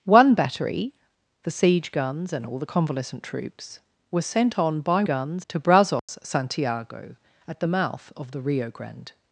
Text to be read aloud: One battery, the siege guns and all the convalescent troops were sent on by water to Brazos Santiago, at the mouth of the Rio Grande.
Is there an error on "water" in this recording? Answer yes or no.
yes